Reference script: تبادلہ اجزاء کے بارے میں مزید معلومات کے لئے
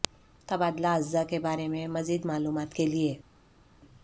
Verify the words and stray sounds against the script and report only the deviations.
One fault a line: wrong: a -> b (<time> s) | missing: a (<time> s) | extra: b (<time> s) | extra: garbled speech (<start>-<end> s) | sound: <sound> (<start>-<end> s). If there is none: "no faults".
no faults